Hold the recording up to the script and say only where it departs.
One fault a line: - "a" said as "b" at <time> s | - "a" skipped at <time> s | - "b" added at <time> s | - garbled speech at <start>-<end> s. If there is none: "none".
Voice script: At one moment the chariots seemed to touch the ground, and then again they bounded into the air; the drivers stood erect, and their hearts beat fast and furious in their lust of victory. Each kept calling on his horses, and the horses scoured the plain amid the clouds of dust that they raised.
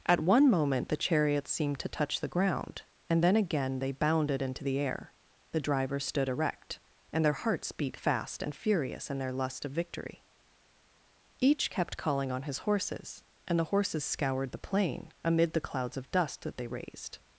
none